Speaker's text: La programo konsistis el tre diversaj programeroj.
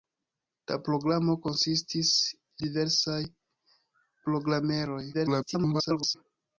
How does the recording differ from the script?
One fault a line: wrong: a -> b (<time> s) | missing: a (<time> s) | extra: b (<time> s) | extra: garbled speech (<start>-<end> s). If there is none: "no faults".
missing: el tre (2.1 s)
extra: garbled speech (5.1-6.2 s)